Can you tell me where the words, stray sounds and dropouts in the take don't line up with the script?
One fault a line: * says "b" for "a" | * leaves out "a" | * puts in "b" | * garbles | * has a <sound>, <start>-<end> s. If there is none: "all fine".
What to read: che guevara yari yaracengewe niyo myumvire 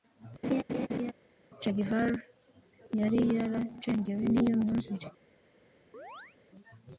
* has a laugh, 0.4-1.1 s
* has a chirp, 5.9-6.4 s